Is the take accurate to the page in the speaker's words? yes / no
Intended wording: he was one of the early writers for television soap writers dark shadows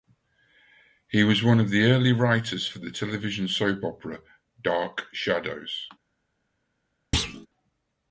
no